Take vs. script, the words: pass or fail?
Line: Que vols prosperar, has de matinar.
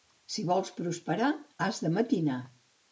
fail